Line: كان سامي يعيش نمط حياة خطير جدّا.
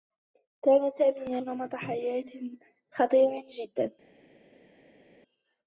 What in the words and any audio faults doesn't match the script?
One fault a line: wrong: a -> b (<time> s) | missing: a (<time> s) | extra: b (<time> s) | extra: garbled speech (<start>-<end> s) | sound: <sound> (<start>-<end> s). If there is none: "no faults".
missing: يعيش (1.4 s)